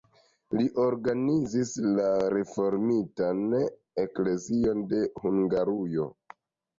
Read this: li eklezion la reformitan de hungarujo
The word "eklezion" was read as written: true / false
false